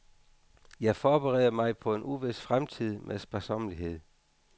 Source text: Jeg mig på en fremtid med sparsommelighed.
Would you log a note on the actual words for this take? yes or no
yes